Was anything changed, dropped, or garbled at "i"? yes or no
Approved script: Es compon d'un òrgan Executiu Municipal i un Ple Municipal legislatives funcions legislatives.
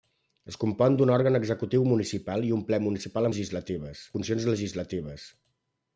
no